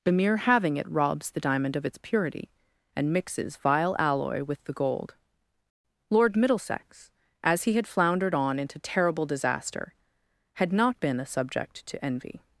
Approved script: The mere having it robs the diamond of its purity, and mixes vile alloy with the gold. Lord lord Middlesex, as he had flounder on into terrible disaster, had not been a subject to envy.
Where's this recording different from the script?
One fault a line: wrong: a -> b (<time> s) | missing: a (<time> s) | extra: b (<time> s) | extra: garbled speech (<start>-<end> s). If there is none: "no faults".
missing: lord (6.3 s)
wrong: flounder -> floundered (7.9 s)